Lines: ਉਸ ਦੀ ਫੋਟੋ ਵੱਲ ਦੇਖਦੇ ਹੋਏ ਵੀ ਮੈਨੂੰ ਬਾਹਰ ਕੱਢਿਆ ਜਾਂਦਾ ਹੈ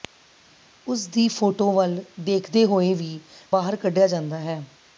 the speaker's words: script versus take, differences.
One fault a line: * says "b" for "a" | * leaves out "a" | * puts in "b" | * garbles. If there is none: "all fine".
* leaves out "ਮੈਨੂੰ"